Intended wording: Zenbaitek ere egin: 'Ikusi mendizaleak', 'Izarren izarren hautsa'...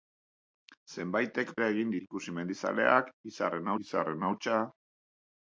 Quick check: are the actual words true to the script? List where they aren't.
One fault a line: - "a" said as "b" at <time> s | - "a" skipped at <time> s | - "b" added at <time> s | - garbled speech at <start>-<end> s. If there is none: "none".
none